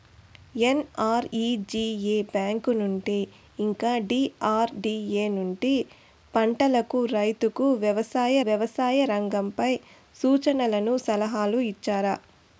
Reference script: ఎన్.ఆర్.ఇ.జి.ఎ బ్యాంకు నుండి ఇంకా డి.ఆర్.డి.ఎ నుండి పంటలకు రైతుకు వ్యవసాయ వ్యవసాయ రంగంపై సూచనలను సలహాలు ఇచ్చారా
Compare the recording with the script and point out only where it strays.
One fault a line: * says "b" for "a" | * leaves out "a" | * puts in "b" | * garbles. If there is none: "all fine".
all fine